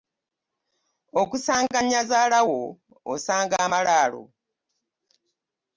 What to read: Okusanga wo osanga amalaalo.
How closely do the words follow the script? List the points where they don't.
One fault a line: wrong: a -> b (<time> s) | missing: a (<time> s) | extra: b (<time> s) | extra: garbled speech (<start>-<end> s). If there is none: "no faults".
extra: nnyazaala (1.8 s)